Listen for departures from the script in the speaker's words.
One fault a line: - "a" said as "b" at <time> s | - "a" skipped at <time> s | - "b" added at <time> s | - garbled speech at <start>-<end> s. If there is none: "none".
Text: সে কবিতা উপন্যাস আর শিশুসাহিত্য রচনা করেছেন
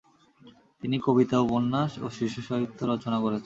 - "সে" said as "তিনি" at 0.8 s
- "আর" said as "ও" at 2.0 s